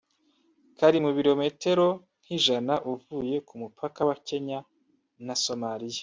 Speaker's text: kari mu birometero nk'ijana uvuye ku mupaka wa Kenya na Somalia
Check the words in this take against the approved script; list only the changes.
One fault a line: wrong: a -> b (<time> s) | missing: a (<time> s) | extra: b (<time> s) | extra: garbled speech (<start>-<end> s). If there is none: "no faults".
no faults